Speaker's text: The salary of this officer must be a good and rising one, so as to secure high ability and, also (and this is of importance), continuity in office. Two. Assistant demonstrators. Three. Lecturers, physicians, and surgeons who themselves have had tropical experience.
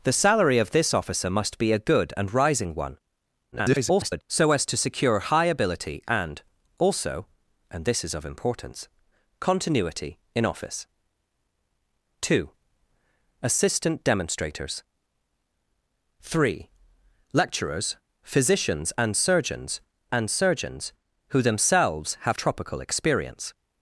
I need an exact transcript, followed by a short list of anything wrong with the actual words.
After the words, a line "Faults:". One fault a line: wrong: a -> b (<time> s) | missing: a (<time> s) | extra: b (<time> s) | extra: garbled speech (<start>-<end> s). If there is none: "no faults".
The salary of this officer must be a good and rising one, [garbled] so as to secure high ability and, also (and this is of importance), continuity in office. Two. Assistant demonstrators. Three. Lecturers, physicians, and surgeons and surgeons who themselves have tropical experience.
Faults:
extra: garbled speech (3.5-4.2 s)
extra: and surgeons (20.1 s)
missing: had (22.4 s)